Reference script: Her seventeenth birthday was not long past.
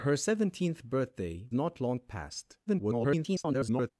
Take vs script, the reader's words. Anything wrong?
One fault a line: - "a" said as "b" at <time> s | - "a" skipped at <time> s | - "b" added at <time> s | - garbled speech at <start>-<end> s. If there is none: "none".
- "was" skipped at 1.5 s
- garbled speech at 2.7-3.9 s